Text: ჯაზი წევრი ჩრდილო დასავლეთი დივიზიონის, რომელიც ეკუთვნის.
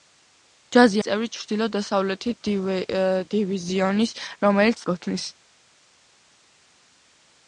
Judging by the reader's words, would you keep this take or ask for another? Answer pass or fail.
pass